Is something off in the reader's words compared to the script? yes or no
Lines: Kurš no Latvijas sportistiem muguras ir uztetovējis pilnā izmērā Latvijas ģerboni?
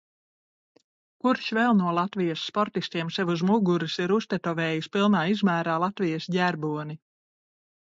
yes